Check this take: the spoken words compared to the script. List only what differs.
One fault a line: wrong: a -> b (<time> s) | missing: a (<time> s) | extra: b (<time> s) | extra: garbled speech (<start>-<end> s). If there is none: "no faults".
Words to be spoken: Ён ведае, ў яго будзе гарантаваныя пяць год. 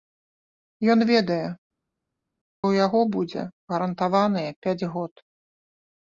no faults